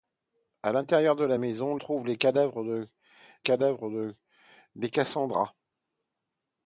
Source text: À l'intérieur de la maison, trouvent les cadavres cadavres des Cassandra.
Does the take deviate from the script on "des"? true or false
false